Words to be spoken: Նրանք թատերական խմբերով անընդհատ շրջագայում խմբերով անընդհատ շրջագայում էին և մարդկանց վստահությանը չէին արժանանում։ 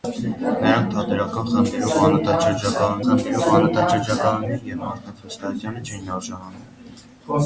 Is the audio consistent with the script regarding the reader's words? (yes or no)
yes